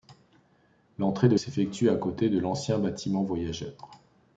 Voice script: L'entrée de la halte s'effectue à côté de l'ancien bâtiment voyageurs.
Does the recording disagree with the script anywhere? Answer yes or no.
yes